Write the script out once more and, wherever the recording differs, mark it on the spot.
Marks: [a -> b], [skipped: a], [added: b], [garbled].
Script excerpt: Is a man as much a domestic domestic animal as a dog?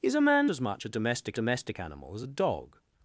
Is a man as much a domestic domestic animal as a dog?